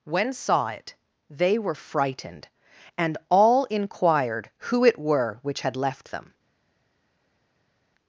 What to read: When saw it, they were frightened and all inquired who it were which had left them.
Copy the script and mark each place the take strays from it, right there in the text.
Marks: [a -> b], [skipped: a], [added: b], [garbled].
When saw it, they were frightened and all inquired who it were which had left them.